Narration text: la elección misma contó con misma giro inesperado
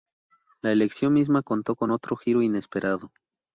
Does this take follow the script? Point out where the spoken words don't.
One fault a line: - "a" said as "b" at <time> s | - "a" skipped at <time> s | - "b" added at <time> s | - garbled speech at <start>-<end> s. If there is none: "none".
- "misma" said as "otro" at 1.9 s